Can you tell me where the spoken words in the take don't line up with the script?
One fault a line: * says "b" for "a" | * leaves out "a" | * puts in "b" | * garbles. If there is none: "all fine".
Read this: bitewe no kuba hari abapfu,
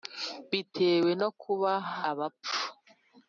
* leaves out "hari"